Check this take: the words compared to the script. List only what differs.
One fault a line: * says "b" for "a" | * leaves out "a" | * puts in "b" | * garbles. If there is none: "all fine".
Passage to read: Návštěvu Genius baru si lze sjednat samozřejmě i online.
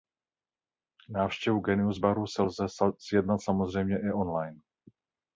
all fine